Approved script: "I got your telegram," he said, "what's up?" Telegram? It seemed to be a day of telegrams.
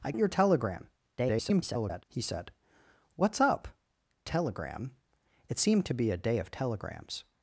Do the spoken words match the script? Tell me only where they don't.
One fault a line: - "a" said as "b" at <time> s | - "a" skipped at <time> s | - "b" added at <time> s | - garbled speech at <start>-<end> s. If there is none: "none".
- "got" skipped at 0.1 s
- garbled speech at 1.2-2.0 s